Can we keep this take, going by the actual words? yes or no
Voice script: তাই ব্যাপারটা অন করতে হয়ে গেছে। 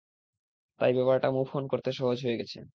no